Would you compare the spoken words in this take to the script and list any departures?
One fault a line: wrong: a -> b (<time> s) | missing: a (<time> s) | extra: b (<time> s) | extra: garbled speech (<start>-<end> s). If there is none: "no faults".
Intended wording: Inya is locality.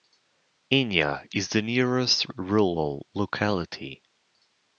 extra: the nearest rural (1.5 s)